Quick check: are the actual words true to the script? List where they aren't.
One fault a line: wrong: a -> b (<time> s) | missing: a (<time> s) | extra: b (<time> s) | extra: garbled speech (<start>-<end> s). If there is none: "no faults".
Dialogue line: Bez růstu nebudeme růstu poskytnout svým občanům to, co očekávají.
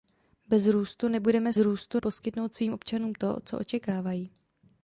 no faults